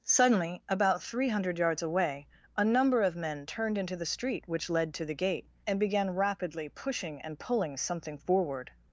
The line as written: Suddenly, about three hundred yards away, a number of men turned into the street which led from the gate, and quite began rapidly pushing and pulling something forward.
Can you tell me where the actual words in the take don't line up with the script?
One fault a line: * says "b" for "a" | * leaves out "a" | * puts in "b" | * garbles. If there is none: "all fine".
* says "to" for "from"
* leaves out "quite"